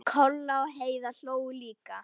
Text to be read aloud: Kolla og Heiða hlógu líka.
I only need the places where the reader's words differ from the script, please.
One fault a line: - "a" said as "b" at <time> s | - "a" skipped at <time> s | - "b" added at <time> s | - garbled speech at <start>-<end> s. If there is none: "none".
none